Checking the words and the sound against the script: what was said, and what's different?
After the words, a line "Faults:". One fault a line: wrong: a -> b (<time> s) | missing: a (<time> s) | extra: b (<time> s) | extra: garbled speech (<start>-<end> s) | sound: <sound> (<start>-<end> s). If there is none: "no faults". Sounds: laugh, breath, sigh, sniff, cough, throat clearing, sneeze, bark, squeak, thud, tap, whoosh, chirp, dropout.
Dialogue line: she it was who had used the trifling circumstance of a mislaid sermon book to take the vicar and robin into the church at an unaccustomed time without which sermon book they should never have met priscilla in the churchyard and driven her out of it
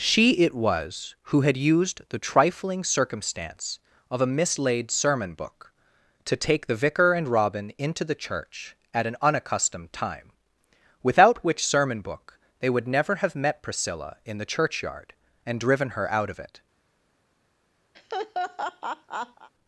she it was who had used the trifling circumstance of a mislaid sermon book to take the vicar and robin into the church at an unaccustomed time without which sermon book they would never have met priscilla in the churchyard and driven her out of it
Faults:
wrong: should -> would (12.7 s)
sound: laugh (17.9-19.5 s)